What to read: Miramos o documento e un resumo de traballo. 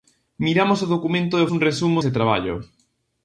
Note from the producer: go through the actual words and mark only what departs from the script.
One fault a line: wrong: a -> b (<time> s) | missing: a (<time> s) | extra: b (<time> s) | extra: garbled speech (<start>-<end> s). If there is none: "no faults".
no faults